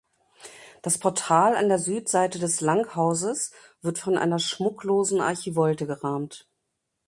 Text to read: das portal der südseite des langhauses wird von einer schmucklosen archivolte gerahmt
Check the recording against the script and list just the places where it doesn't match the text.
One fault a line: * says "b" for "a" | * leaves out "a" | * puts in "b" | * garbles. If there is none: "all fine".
* puts in "an"